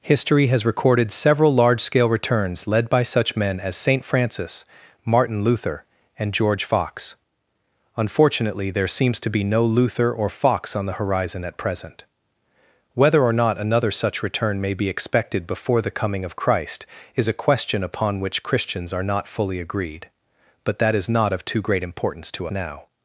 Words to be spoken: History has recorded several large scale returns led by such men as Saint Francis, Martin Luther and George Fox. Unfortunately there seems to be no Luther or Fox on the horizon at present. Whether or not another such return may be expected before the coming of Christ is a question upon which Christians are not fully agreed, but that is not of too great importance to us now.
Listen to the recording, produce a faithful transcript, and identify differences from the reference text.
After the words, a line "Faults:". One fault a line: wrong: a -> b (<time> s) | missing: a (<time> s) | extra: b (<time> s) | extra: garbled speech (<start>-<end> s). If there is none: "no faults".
History has recorded several large scale returns led by such men as Saint Francis, Martin Luther and George Fox. Unfortunately there seems to be no Luther or Fox on the horizon at present. Whether or not another such return may be expected before the coming of Christ is a question upon which Christians are not fully agreed, but that is not of too great importance to now.
Faults:
missing: us (22.5 s)